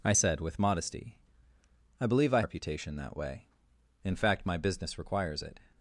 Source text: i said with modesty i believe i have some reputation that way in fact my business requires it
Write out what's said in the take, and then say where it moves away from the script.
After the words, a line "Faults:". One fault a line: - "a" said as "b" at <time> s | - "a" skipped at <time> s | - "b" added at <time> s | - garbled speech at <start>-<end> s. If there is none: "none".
i said with modesty i believe i reputation that way in fact my business requires it
Faults:
- "have some" skipped at 2.4 s